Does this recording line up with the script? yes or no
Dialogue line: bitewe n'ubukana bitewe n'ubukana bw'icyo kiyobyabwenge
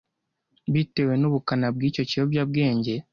no